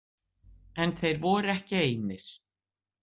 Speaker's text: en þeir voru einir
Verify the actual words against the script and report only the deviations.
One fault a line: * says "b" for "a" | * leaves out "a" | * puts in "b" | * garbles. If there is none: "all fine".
* puts in "ekki"